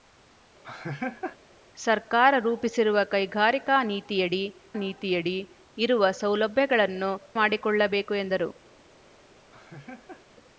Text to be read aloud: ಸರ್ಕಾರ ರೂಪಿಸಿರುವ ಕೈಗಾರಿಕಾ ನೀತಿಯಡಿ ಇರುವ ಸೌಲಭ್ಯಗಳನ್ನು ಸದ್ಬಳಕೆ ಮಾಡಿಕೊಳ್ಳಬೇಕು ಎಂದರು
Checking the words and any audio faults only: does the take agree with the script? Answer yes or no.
no